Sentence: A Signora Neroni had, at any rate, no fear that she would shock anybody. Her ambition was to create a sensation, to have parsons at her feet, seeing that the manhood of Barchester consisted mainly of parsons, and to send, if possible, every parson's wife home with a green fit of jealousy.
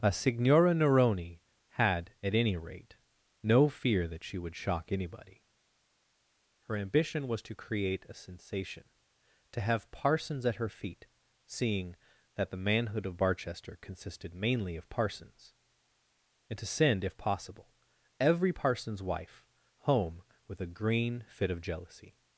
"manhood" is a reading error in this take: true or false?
false